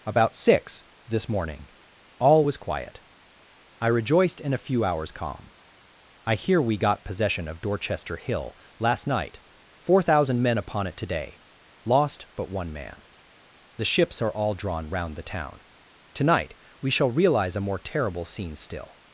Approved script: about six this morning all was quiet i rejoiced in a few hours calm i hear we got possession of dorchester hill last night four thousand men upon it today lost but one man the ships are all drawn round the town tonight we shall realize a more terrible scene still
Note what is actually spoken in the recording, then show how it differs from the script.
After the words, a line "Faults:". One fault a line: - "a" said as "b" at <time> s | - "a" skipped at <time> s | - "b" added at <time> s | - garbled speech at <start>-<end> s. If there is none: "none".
about six this morning all was quiet i rejoiced in a few hours calm i hear we got possession of dorchester hill last night four thousand men upon it today lost but one man the ships are all drawn round the town tonight we shall realize a more terrible scene still
Faults:
none